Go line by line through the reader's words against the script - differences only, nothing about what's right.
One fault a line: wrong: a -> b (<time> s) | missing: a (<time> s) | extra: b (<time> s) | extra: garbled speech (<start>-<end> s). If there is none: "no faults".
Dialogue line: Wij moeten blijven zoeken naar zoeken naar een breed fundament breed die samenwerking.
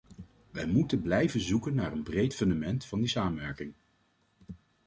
missing: zoeken naar (1.9 s)
wrong: breed -> van (2.9 s)